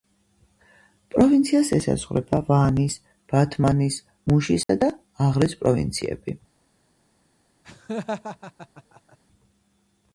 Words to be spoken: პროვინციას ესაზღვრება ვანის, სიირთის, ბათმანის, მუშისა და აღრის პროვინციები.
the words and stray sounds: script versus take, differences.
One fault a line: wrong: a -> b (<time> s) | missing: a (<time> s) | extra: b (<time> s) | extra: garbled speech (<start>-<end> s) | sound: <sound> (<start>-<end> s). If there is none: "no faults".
missing: სიირთის (3.0 s)
sound: dropout (4.6-4.7 s)
sound: laugh (7.6-9.2 s)